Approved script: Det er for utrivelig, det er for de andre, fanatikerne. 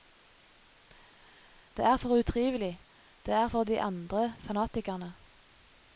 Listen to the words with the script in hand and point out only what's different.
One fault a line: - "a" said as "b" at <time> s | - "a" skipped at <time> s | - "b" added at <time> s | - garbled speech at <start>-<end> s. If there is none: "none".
none